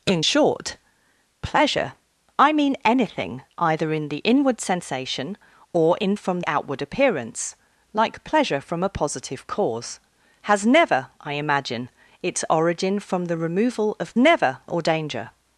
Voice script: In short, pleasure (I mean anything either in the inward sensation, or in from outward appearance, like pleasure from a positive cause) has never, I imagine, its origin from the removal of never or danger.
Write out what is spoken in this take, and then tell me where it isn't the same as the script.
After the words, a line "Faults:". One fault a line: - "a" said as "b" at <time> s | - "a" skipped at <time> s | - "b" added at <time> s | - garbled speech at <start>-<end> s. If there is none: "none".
In short, pleasure (I mean anything either in the inward sensation, or in from outward appearance, like pleasure from a positive cause) has never, I imagine, its origin from the removal of never or danger.
Faults:
none